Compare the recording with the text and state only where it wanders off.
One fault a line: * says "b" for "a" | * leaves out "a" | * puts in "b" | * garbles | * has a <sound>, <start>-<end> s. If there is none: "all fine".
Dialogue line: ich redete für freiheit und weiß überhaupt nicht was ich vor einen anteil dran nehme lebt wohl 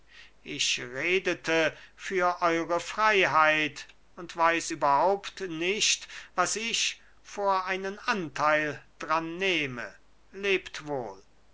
* puts in "eure"